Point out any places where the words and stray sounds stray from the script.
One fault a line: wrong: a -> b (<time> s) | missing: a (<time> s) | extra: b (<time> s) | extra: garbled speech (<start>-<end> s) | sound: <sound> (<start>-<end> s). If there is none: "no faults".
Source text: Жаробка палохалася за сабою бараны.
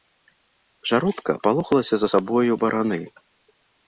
no faults